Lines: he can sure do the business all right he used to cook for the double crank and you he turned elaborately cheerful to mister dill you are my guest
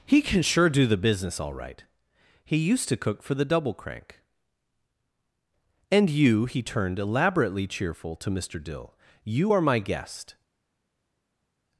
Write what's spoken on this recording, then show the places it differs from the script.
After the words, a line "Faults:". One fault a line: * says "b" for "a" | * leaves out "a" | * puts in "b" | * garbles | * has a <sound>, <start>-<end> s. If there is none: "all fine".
he can sure do the business all right he used to cook for the double crank and you he turned elaborately cheerful to mister dill you are my guest
Faults:
all fine